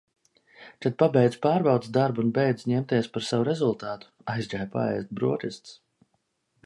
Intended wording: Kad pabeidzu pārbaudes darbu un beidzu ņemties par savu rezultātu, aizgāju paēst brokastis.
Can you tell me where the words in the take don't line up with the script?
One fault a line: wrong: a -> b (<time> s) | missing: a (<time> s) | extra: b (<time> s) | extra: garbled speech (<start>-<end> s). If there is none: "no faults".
no faults